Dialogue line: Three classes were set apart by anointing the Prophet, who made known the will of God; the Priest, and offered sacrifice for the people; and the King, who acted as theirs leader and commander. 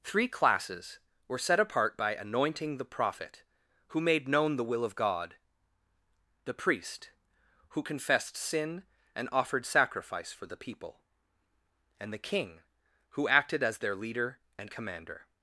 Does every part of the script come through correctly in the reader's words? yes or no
no